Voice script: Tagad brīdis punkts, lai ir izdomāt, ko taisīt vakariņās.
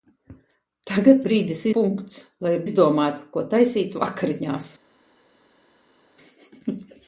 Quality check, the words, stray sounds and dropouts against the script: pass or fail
pass